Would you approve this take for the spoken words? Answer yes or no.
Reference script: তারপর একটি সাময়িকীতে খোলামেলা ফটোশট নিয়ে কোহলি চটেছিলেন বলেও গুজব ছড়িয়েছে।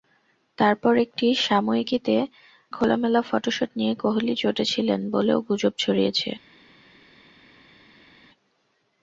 yes